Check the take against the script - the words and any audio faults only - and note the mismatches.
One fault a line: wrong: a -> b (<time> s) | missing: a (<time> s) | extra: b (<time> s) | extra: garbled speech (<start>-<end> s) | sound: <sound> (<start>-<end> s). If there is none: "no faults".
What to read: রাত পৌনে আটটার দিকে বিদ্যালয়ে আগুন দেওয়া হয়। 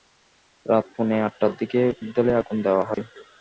sound: dropout (2.9-3.0 s)